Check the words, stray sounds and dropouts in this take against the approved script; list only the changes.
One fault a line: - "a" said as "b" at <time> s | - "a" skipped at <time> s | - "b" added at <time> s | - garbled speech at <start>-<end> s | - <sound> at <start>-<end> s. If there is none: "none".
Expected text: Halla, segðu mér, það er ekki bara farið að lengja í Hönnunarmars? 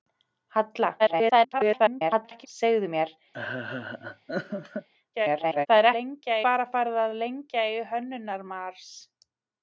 - garbled speech at 1.0-2.5 s
- laugh at 3.3-4.9 s
- garbled speech at 5.1-5.7 s
- "ekki" said as "lengja" at 6.0 s